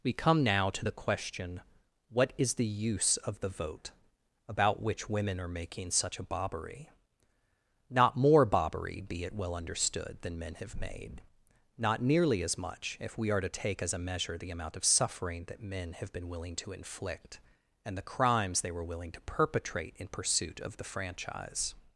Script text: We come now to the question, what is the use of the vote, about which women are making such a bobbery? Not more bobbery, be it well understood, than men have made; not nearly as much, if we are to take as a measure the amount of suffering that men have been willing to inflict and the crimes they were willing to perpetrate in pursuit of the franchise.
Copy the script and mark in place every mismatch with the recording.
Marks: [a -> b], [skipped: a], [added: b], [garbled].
We come now to the question, what is the use of the vote, about which women are making such a bobbery? Not more bobbery, be it well understood, than men have made; not nearly as much, if we are to take as a measure the amount of suffering that men have been willing to inflict and the crimes they were willing to perpetrate in pursuit of the franchise.